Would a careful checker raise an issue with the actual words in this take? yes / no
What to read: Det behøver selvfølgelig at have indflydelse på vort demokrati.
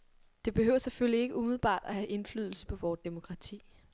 yes